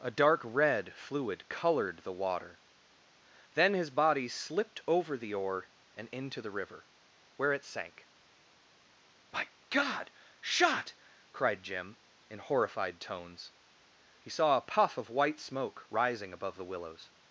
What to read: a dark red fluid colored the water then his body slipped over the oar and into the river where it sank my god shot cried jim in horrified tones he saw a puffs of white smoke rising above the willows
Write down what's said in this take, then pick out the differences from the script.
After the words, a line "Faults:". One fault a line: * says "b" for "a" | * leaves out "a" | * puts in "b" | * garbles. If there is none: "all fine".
a dark red fluid colored the water then his body slipped over the oar and into the river where it sank my god shot cried jim in horrified tones he saw a puff of white smoke rising above the willows
Faults:
* says "puff" for "puffs"